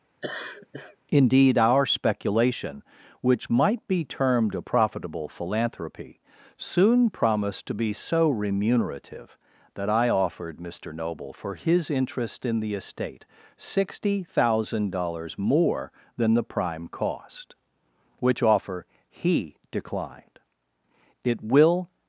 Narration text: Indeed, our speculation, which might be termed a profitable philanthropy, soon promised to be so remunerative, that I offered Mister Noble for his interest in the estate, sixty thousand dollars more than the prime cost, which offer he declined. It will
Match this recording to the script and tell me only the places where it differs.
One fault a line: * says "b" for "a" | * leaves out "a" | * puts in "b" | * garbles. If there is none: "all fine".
all fine